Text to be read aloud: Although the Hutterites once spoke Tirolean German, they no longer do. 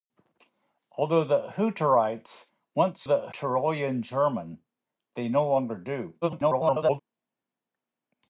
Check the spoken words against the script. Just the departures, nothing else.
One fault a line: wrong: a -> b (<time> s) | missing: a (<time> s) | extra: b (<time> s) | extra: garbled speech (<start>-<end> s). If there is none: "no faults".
wrong: spoke -> the (3.0 s)
extra: garbled speech (6.2-7.0 s)